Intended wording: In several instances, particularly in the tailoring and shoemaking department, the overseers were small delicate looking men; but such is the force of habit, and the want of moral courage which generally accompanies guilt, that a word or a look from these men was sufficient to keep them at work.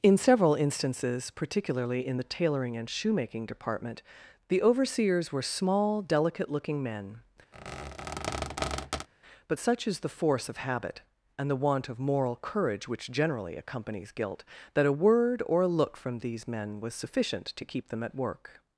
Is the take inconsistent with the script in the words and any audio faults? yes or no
yes